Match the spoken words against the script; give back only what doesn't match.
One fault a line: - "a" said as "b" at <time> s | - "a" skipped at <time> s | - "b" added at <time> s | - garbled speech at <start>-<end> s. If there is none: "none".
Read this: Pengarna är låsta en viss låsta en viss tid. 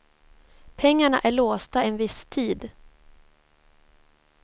- "låsta en viss" skipped at 2.3 s